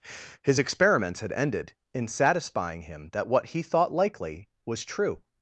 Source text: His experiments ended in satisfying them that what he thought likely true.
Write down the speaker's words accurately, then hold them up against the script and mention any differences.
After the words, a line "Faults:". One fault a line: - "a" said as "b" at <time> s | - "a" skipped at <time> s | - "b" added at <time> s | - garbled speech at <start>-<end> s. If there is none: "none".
His experiments had ended in satisfying him that what he thought likely was true.
Faults:
- "had" added at 1.2 s
- "them" said as "him" at 2.8 s
- "was" added at 4.7 s